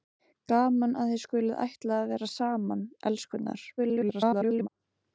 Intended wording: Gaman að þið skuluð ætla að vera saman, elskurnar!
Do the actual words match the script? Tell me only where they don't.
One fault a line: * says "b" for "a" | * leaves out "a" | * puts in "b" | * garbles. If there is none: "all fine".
* garbles